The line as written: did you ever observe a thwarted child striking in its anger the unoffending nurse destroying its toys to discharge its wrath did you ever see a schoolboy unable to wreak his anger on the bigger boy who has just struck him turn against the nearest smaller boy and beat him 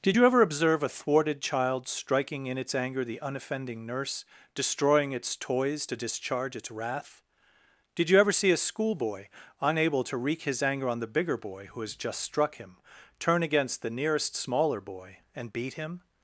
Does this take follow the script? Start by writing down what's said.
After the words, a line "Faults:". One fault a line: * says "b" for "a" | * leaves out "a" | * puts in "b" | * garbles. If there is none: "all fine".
did you ever observe a thwarted child striking in its anger the unoffending nurse destroying its toys to discharge its wrath did you ever see a schoolboy unable to wreak his anger on the bigger boy who has just struck him turn against the nearest smaller boy and beat him
Faults:
all fine